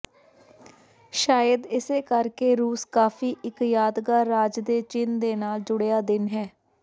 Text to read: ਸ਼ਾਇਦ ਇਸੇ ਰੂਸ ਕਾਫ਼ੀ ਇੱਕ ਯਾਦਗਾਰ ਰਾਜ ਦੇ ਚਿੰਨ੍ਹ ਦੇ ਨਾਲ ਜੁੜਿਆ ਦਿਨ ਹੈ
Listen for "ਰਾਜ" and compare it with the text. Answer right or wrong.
right